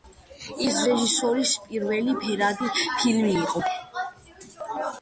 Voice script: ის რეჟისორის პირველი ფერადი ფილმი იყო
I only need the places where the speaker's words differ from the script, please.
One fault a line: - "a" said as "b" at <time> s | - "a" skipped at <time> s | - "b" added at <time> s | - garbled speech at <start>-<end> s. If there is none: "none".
none